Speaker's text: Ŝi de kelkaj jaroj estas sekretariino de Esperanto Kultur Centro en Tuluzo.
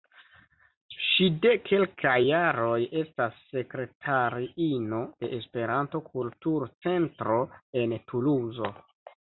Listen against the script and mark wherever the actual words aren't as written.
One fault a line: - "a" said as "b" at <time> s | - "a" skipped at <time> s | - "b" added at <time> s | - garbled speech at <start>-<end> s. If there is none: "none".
none